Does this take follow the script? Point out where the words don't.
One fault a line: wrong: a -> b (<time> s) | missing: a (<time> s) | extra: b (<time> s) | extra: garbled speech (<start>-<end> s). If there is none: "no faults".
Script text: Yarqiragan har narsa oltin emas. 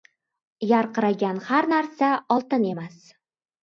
no faults